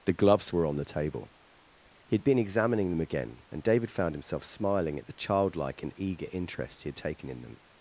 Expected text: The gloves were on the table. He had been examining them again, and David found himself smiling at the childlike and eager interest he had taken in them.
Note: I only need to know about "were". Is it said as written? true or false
true